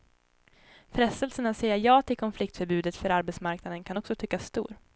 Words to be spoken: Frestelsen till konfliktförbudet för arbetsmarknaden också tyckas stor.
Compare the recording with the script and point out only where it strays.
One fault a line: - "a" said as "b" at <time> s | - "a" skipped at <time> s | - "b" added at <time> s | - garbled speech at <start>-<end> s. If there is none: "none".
- "att säga ja" added at 1.4 s
- "kan" added at 3.8 s